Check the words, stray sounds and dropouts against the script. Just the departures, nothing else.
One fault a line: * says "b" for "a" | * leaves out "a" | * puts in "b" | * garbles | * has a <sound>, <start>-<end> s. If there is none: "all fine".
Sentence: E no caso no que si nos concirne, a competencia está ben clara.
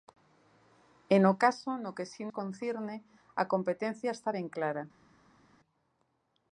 * leaves out "nos"